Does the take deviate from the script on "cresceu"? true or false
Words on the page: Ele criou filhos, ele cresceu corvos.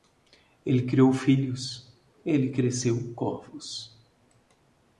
false